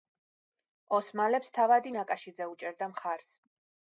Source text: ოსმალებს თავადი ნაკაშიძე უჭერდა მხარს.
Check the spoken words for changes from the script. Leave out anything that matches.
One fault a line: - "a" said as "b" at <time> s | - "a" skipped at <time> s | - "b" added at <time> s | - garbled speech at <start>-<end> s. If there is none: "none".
none